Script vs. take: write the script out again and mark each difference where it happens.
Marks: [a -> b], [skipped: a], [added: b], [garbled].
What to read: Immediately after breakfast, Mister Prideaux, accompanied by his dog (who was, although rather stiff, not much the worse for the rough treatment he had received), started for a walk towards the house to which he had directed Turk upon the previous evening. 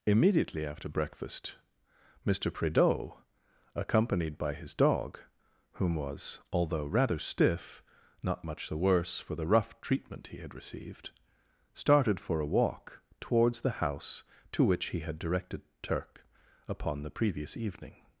Immediately after breakfast, Mister Prideaux, accompanied by his dog [(who -> whom] was, although rather stiff, not much the worse for the rough treatment he had received), started for a walk towards the house to which he had directed Turk upon the previous evening.